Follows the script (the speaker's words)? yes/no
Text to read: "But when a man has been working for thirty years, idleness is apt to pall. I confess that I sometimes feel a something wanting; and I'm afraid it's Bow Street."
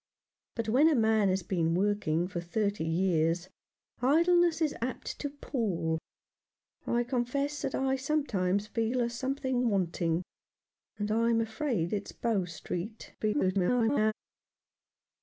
no